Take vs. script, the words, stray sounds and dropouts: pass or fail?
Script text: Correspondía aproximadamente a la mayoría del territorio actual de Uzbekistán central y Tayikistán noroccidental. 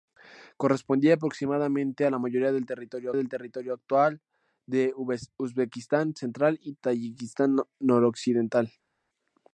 fail